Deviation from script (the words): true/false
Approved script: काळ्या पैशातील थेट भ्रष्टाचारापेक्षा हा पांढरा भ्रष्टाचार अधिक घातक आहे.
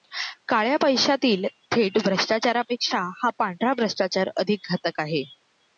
false